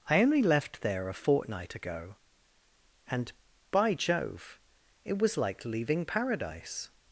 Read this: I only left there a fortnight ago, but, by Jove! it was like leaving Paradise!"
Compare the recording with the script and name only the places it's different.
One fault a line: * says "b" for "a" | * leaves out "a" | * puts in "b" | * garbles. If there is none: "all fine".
* says "and" for "but"